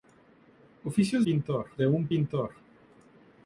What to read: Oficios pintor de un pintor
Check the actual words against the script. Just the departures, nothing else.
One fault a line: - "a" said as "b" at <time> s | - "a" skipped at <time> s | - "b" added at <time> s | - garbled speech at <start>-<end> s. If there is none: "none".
none